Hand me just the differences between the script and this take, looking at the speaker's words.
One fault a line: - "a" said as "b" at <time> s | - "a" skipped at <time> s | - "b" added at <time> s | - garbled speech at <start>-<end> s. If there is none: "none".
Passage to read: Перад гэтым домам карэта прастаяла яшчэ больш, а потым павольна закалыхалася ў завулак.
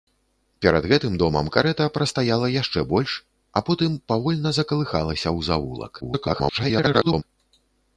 - garbled speech at 6.0-7.2 s